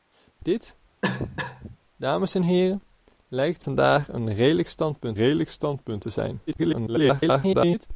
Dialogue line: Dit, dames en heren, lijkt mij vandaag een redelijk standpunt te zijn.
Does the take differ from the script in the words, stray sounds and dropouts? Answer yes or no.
yes